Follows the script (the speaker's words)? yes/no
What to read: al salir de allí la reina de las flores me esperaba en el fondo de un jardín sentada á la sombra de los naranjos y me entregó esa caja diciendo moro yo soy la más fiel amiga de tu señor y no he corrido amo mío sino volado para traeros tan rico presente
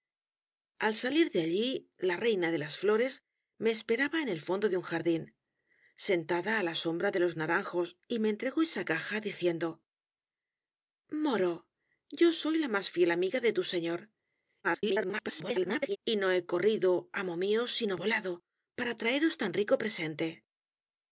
no